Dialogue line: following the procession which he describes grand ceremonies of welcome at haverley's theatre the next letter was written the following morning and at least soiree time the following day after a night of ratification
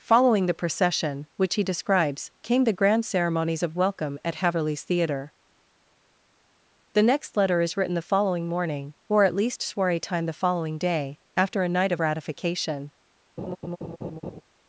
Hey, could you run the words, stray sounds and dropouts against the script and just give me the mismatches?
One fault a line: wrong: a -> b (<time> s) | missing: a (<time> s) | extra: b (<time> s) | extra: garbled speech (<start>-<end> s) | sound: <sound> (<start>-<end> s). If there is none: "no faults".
extra: came the (2.4 s)
wrong: was -> is (7.6 s)
wrong: and -> or (9.1 s)
sound: laugh (13.4-14.4 s)